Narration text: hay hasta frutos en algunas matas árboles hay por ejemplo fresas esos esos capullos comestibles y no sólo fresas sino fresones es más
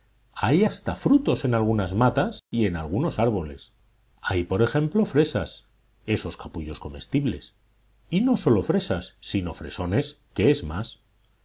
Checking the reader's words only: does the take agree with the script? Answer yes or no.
no